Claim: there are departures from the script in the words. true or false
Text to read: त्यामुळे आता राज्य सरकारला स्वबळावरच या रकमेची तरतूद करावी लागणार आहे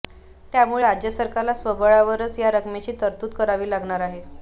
true